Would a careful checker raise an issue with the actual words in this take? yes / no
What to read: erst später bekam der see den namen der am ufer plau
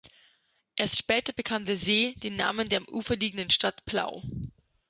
yes